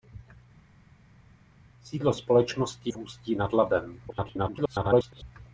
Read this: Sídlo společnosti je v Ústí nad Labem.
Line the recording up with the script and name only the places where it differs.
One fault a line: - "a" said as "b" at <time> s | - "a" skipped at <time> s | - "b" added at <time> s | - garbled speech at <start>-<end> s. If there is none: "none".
- "je" skipped at 2.9 s
- garbled speech at 4.1-5.2 s